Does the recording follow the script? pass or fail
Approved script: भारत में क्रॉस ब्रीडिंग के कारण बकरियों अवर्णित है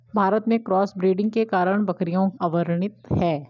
pass